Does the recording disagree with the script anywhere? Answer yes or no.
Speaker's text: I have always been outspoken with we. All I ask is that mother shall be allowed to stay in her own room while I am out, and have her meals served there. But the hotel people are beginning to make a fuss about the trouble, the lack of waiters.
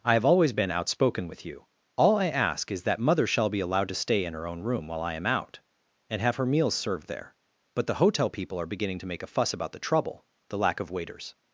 yes